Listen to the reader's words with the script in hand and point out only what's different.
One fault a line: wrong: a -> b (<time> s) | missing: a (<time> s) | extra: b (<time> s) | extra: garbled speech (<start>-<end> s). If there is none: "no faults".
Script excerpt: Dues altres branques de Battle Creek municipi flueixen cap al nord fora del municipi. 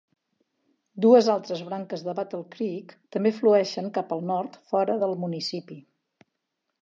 wrong: municipi -> també (3.2 s)